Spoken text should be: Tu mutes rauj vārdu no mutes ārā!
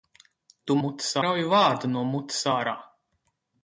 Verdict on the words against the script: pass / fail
pass